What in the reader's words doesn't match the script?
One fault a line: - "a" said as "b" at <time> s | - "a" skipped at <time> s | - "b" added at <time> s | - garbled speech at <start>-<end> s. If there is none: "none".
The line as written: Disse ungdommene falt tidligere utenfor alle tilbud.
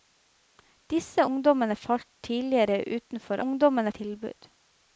- "alle" said as "ungdommene" at 3.4 s